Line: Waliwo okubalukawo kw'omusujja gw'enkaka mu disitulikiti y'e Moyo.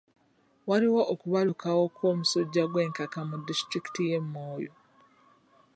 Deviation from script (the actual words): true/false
false